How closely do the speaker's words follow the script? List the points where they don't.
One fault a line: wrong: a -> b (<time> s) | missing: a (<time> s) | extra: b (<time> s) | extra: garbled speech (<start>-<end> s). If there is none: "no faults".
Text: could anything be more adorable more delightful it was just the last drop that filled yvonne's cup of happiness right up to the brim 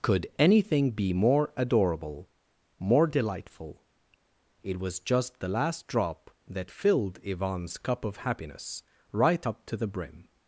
no faults